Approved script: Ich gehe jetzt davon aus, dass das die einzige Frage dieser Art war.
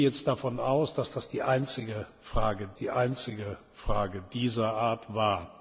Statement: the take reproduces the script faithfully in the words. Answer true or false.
false